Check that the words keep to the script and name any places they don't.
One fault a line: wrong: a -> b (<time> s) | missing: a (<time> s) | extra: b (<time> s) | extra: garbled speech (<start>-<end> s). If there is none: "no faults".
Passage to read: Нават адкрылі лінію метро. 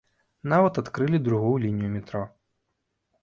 extra: другую (1.3 s)